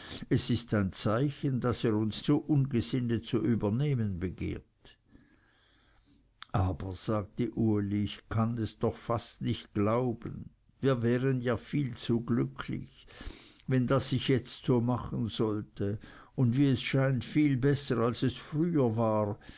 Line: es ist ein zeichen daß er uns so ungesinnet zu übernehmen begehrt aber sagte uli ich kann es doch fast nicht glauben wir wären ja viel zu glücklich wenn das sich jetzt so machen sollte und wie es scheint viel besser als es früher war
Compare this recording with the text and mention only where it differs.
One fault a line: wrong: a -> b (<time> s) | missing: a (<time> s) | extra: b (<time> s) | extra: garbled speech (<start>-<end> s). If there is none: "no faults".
no faults